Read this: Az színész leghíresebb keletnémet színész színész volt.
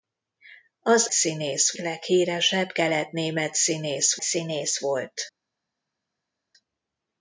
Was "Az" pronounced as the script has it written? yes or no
yes